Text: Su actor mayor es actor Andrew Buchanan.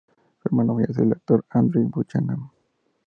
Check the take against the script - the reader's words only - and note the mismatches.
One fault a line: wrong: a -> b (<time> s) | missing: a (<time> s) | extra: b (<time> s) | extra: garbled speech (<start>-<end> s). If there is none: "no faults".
wrong: actor -> hermano (0.5 s)
extra: el (1.0 s)